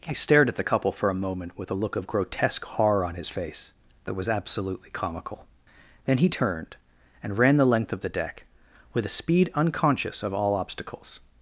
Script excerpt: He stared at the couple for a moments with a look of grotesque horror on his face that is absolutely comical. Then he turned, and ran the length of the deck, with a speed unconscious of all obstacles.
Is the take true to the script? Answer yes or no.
no